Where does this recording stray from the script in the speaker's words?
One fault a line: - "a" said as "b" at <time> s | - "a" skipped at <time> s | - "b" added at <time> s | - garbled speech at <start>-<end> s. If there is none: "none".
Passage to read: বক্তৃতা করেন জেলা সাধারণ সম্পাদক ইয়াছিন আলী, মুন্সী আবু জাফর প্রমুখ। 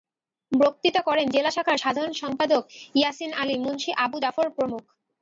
- "শাখার" added at 1.6 s